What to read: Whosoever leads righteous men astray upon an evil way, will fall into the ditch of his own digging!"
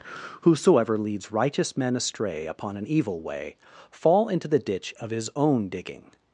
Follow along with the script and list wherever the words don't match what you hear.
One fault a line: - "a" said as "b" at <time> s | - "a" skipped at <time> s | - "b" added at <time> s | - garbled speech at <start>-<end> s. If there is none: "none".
- "will" skipped at 3.6 s